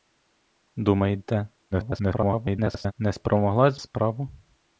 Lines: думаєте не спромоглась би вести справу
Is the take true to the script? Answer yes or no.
no